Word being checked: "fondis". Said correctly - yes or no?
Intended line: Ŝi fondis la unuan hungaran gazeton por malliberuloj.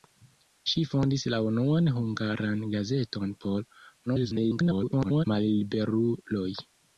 yes